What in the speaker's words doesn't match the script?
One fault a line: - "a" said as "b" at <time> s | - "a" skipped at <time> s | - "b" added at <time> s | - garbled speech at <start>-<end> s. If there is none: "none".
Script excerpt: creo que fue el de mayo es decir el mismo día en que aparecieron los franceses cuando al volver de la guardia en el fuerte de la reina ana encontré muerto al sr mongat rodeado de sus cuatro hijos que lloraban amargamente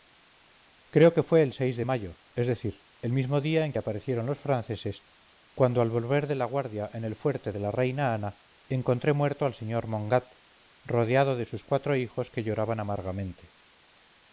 none